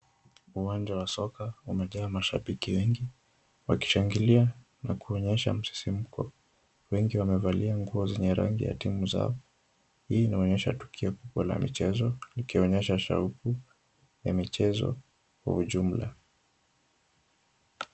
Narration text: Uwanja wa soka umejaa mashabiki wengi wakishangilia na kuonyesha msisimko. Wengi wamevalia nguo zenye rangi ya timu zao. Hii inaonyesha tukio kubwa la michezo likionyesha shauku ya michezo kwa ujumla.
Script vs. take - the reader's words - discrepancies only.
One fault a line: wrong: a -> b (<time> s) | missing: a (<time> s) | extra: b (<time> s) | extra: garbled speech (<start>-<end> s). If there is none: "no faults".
no faults